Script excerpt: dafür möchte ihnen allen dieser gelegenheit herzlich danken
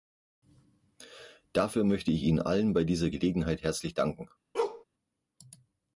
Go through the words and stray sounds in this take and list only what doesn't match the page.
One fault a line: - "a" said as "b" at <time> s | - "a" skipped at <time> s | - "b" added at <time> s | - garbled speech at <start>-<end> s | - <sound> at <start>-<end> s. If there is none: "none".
- "ich" added at 2.1 s
- "bei" added at 2.7 s
- bark at 4.5-4.8 s